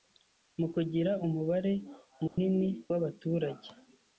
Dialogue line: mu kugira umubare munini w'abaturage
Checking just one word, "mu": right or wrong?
right